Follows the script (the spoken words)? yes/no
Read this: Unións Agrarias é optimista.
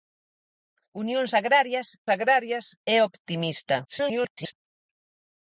no